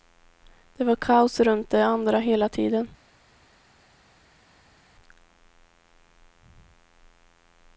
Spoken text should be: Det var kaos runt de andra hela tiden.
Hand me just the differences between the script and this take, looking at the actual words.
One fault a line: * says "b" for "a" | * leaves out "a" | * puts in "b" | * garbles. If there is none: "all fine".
all fine